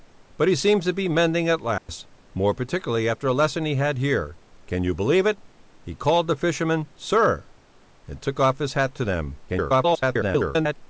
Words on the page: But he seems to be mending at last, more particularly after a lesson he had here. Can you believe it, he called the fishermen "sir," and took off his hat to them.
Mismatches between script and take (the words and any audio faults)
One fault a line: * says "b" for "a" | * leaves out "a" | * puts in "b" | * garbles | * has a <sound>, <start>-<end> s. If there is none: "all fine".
* has a dropout, 1.8-1.9 s
* garbles